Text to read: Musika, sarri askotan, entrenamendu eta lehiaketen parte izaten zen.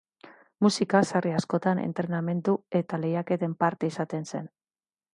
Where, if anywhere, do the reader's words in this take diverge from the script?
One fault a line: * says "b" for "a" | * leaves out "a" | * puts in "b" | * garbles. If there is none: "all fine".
all fine